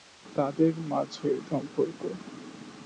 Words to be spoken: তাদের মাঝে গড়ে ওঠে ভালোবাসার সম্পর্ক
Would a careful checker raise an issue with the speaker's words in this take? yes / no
yes